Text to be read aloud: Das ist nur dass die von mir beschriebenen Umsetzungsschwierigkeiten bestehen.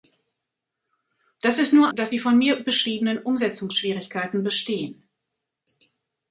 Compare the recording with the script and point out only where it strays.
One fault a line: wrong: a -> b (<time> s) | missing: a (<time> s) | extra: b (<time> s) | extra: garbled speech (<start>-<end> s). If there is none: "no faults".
no faults